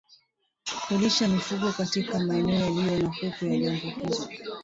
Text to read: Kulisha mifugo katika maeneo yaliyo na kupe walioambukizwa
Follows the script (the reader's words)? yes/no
yes